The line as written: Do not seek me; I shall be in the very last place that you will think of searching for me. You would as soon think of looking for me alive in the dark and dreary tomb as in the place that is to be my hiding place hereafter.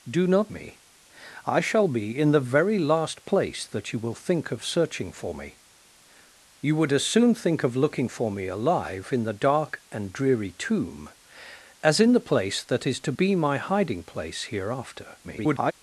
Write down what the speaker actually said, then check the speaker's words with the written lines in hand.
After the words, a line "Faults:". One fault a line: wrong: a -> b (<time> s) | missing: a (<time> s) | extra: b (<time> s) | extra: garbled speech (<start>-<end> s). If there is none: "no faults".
Do not me; I shall be in the very last place that you will think of searching for me. You would as soon think of looking for me alive in the dark and dreary tomb as in the place that is to be my hiding place hereafter. [garbled]
Faults:
missing: seek (0.5 s)
extra: garbled speech (15.2-15.7 s)